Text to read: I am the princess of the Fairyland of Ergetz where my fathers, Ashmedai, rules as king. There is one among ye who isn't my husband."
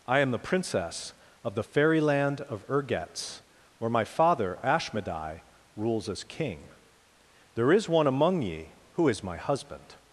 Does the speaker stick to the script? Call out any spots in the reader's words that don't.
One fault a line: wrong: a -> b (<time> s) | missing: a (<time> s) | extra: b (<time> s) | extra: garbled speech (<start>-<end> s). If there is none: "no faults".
wrong: fathers -> father (4.0 s)
wrong: isn't -> is (9.1 s)